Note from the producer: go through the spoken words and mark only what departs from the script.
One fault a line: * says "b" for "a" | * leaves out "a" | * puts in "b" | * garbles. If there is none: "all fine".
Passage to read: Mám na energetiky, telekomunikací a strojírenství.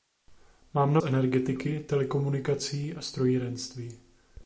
all fine